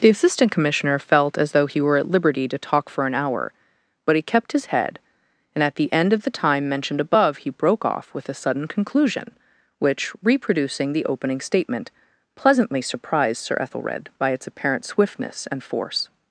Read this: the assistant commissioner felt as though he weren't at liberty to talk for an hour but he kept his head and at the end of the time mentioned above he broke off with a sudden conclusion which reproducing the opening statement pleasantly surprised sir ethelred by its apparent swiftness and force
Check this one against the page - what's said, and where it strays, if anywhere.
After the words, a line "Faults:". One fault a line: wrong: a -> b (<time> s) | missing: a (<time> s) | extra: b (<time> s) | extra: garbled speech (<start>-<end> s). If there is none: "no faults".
the assistant commissioner felt as though he were at liberty to talk for an hour but he kept his head and at the end of the time mentioned above he broke off with a sudden conclusion which reproducing the opening statement pleasantly surprised sir ethelred by its apparent swiftness and force
Faults:
wrong: weren't -> were (1.8 s)